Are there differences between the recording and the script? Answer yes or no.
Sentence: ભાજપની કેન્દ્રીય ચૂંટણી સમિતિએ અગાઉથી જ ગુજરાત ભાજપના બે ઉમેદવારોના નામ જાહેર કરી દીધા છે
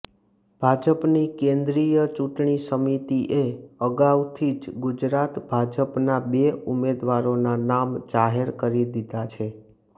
no